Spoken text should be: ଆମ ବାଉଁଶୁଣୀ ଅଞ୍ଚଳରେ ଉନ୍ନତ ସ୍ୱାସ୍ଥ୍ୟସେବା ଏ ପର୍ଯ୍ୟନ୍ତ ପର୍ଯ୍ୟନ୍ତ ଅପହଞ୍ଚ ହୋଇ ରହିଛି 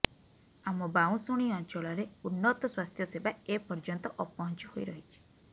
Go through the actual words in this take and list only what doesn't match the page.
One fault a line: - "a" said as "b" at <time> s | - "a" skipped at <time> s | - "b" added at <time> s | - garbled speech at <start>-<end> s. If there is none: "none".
- "ପର୍ଯ୍ୟନ୍ତ" skipped at 4.1 s